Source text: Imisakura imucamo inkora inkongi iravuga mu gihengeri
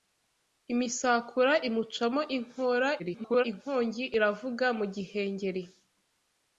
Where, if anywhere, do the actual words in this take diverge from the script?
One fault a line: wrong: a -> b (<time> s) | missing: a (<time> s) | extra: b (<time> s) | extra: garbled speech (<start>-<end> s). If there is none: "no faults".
extra: garbled speech (3.0-3.4 s)